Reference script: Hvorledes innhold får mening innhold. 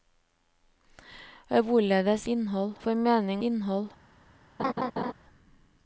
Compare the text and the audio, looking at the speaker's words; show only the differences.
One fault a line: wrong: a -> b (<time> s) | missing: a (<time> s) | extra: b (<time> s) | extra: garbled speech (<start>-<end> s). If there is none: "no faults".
no faults